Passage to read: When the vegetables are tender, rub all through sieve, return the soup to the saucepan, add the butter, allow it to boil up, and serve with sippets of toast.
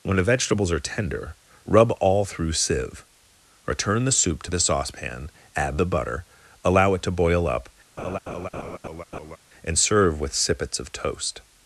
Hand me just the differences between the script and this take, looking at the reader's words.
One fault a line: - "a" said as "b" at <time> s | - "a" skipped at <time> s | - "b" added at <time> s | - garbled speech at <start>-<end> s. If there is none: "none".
none